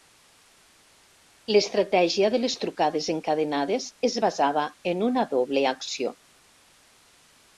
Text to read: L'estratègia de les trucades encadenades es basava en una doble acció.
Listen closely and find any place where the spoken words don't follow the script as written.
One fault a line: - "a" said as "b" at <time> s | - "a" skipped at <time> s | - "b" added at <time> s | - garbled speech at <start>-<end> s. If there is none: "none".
none